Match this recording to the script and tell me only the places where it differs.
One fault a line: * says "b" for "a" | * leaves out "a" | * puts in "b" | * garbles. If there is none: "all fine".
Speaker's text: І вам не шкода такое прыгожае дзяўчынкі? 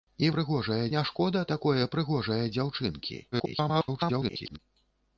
* says "прыгожае" for "вам"
* garbles